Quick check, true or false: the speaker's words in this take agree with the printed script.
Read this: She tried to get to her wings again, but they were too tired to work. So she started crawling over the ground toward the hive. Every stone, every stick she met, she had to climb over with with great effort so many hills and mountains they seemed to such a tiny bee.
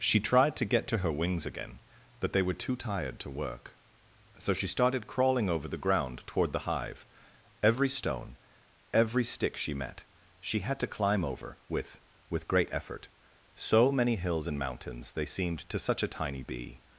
true